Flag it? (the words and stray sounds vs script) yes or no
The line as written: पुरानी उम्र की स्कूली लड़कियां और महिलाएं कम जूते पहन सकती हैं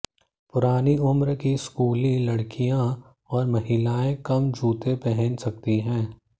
no